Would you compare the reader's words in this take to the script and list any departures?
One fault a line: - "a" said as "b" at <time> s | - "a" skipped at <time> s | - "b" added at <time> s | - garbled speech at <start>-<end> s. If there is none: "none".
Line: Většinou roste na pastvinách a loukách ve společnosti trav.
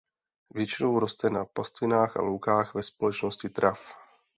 none